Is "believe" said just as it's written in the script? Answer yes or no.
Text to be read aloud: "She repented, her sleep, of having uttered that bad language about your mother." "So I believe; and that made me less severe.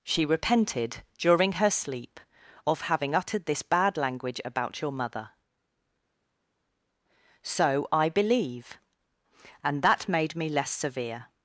yes